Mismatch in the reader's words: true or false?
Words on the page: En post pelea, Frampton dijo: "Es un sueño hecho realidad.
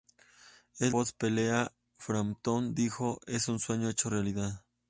false